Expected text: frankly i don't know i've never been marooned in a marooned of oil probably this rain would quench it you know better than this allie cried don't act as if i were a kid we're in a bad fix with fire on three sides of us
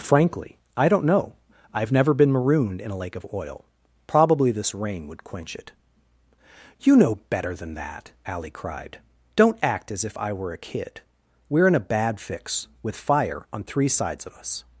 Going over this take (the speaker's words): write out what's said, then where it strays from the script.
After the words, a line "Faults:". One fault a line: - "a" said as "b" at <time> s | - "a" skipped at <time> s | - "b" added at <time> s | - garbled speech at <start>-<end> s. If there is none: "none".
frankly i don't know i've never been marooned in a lake of oil probably this rain would quench it you know better than that allie cried don't act as if i were a kid we're in a bad fix with fire on three sides of us
Faults:
- "marooned" said as "lake" at 3.0 s
- "this" said as "that" at 7.8 s